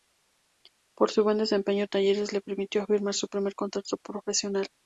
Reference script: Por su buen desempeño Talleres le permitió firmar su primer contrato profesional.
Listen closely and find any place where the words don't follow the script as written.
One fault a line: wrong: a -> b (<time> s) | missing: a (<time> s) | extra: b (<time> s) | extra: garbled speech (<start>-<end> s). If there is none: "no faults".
no faults